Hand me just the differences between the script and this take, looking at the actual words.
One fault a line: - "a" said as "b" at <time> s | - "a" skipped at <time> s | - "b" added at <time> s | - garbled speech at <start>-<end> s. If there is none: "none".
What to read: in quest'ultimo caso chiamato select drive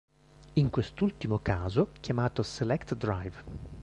none